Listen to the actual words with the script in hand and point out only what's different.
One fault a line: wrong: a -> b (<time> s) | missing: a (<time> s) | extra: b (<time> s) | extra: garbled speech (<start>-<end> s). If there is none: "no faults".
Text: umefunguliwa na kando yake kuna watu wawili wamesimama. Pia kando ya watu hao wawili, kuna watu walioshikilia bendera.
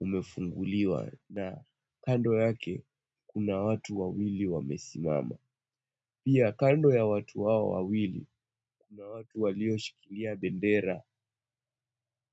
no faults